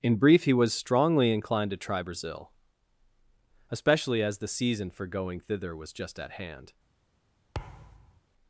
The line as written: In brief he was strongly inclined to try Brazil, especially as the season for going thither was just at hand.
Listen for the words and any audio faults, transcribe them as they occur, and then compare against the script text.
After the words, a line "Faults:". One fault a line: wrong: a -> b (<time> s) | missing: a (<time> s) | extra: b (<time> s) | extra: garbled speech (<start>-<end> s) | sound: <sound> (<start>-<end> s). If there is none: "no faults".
In brief he was strongly inclined to try Brazil, especially as the season for going thither was just at hand.
Faults:
sound: thud (7.5-8.2 s)